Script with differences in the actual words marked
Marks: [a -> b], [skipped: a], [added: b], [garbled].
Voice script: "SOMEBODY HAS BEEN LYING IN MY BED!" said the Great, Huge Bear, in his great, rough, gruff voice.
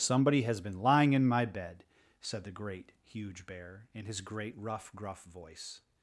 "SOMEBODY HAS BEEN LYING IN MY BED!" said the Great, Huge Bear, in his great, rough, gruff voice.